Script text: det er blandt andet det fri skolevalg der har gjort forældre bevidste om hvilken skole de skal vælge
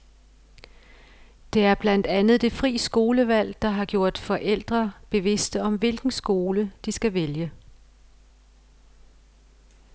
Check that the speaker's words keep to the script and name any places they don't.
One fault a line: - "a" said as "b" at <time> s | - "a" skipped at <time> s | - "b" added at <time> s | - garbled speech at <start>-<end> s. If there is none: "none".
none